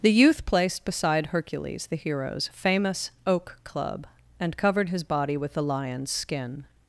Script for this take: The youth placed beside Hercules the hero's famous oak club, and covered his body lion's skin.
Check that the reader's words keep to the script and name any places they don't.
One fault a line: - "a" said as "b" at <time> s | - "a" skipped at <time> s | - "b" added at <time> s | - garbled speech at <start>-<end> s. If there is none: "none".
- "with the" added at 5.4 s